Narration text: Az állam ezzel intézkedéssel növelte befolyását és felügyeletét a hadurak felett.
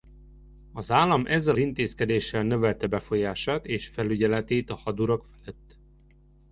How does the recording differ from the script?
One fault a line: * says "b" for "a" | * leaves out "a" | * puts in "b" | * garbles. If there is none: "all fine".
all fine